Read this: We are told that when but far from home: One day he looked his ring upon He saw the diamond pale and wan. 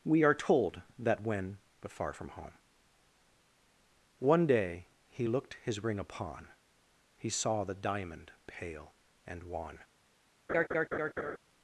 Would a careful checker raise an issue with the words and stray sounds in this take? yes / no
yes